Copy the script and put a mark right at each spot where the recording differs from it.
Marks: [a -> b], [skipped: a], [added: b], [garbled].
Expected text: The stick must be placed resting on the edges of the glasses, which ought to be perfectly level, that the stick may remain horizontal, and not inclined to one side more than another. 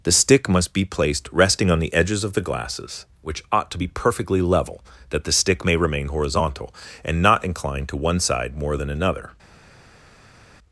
The stick must be placed resting on the edges of the glasses, which ought to be perfectly level, that the stick may remain horizontal, and not inclined to one side more than another.